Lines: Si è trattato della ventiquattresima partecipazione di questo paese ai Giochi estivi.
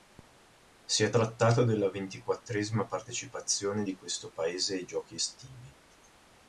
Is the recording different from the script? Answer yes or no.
no